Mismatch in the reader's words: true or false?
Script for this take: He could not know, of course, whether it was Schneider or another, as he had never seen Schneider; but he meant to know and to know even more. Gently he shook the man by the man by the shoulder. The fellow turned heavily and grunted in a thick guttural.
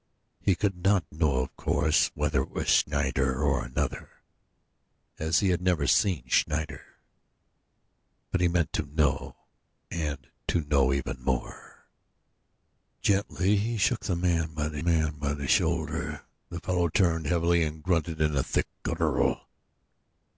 false